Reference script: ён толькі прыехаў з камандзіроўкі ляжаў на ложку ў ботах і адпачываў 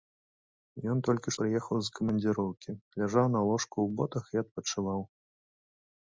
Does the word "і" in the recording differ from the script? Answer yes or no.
no